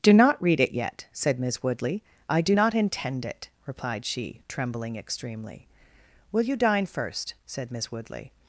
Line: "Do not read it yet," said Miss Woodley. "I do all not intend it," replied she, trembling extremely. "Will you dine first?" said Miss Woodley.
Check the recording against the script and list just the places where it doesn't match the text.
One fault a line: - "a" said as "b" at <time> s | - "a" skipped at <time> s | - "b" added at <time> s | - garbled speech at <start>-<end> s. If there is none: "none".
- "all" skipped at 2.5 s